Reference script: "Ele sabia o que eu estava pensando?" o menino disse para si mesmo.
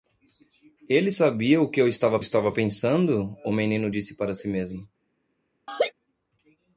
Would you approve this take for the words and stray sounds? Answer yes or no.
no